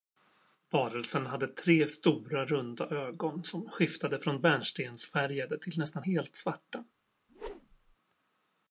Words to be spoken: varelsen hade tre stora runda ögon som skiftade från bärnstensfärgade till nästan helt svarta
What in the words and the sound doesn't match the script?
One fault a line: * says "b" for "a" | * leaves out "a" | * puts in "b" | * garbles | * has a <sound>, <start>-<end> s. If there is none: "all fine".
* has a whoosh, 7.3-8.0 s